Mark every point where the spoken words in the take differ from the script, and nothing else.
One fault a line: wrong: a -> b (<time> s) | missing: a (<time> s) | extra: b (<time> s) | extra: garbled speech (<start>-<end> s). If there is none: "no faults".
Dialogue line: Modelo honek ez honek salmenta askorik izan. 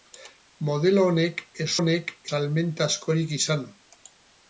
no faults